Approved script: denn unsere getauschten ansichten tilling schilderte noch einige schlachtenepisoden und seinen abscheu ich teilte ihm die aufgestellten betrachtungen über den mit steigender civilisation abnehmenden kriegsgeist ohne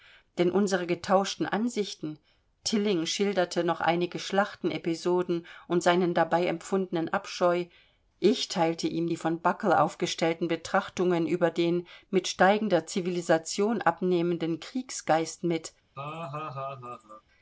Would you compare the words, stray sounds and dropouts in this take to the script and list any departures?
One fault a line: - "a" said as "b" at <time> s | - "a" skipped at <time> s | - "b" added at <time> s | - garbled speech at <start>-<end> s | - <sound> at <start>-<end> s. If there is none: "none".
- "dabei empfundenen" added at 6.1 s
- "von buckle" added at 9.2 s
- "ohne" said as "mit" at 15.4 s
- laugh at 16.0-17.2 s